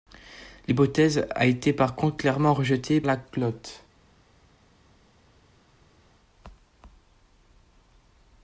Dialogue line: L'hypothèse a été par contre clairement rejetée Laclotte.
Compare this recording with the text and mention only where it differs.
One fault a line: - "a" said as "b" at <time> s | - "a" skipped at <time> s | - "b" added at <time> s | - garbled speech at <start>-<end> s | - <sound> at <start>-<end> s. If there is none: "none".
none